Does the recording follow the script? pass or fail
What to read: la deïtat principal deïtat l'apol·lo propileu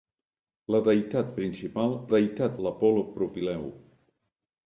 pass